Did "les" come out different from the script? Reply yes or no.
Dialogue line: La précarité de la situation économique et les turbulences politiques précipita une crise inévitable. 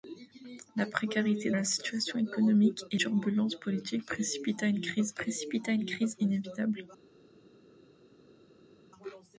yes